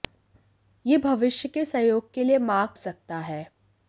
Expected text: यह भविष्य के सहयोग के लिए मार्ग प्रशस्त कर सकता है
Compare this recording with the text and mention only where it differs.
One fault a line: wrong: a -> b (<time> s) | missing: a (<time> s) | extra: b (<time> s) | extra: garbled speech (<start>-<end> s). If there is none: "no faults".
missing: प्रशस्त कर (2.7 s)